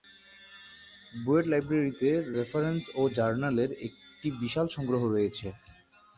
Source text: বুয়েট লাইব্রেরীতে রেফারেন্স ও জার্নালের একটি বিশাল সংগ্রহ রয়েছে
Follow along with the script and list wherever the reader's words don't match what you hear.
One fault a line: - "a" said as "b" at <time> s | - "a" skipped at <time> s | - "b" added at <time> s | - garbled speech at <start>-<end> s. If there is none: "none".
none